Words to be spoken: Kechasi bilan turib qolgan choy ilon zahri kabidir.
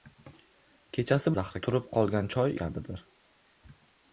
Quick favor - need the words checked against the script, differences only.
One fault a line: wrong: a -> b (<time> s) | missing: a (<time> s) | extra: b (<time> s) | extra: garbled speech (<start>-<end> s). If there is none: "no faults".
wrong: bilan -> zahri (1.4 s)
missing: ilon zahri (2.6 s)